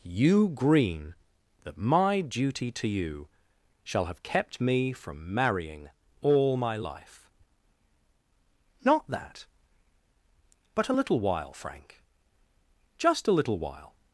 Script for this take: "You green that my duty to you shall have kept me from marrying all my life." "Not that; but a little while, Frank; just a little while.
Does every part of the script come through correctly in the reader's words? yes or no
yes